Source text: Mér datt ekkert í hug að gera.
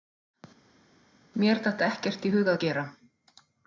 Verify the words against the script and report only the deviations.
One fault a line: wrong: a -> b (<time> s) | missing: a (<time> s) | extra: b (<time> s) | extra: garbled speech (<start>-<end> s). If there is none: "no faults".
no faults